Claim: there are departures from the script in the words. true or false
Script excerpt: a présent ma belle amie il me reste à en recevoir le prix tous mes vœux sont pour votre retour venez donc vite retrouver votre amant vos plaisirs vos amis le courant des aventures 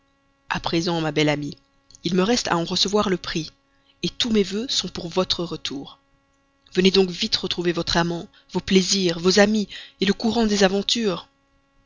false